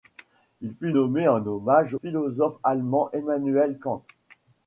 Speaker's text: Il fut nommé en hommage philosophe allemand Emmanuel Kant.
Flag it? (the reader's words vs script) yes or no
no